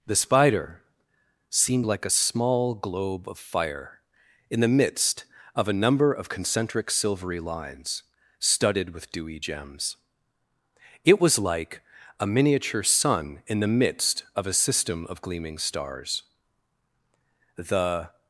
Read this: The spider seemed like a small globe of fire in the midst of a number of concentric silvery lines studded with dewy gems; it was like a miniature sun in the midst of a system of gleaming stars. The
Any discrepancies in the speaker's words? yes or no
no